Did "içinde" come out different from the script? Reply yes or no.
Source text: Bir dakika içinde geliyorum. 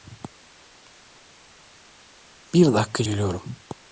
yes